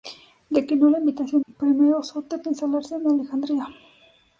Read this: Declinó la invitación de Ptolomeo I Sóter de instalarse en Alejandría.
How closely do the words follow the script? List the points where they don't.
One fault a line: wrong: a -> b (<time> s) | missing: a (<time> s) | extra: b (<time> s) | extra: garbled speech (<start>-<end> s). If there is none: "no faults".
missing: de Ptolomeo (1.4 s)